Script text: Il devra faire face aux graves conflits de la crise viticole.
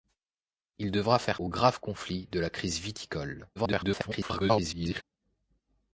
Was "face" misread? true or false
true